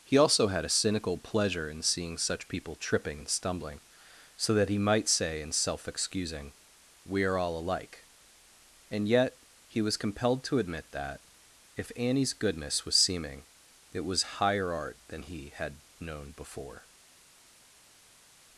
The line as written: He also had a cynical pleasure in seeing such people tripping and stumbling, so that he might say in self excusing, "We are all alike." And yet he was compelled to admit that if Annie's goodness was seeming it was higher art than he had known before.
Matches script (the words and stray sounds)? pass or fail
pass